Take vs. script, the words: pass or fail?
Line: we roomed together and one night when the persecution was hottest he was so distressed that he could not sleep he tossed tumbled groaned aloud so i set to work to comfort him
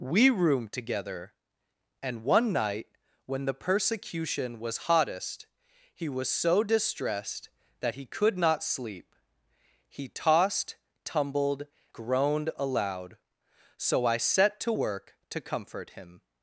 pass